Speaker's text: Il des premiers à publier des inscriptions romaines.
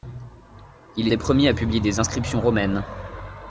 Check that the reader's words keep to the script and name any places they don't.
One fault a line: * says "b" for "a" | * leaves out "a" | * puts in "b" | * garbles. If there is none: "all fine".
all fine